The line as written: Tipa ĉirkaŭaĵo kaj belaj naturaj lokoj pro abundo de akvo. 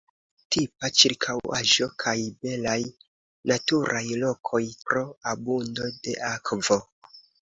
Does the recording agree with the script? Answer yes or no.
yes